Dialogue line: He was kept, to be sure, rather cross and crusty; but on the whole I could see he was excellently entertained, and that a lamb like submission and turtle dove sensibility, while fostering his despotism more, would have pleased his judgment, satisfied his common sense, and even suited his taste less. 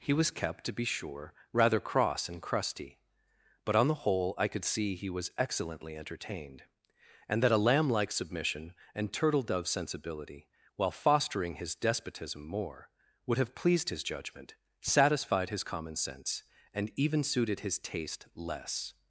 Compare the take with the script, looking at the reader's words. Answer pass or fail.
pass